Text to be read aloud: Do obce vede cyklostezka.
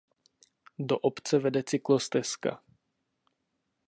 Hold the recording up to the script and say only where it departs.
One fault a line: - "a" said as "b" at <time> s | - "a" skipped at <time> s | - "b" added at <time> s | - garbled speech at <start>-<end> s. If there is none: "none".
none